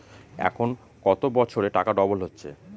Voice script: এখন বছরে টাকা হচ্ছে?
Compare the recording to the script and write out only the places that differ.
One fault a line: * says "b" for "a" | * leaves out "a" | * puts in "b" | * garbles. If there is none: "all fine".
* puts in "কত"
* puts in "ডবল"